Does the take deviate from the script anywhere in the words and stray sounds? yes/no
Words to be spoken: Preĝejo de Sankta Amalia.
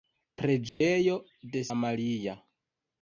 yes